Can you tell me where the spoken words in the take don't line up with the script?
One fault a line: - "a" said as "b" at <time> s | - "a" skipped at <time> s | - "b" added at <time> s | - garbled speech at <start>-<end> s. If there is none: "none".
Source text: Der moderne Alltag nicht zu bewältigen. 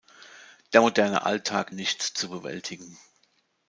none